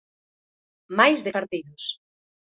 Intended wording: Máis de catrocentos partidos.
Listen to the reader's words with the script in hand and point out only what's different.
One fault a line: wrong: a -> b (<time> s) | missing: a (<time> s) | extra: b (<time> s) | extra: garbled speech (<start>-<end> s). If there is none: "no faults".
missing: catrocentos (1.3 s)